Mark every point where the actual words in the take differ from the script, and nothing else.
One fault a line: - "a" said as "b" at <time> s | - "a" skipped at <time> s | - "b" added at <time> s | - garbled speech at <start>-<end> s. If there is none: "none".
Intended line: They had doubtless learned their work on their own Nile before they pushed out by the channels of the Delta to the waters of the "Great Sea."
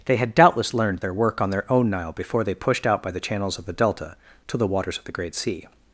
none